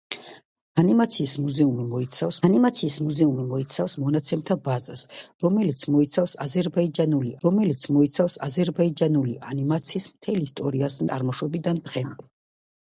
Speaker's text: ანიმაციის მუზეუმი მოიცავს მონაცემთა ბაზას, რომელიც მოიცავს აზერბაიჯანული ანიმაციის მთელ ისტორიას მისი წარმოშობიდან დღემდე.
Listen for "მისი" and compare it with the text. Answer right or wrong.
wrong